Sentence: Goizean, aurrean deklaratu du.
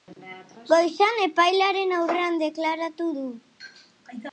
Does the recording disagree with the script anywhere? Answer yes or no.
yes